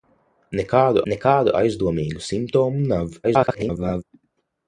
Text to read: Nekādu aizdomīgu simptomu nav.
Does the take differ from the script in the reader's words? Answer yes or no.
yes